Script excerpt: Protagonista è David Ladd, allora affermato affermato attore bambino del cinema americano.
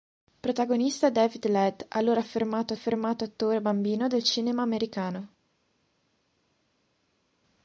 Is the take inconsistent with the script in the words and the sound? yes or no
no